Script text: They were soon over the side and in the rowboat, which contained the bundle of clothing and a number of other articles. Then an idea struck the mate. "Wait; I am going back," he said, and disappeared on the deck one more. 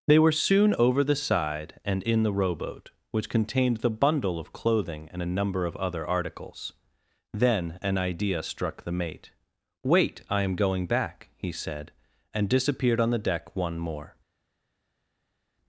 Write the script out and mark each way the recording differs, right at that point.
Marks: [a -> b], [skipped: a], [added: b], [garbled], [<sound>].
They were soon over the side and in the rowboat, which contained the bundle of clothing and a number of other articles. Then an idea struck the mate. "Wait; I am going back," he said, and disappeared on the deck one more.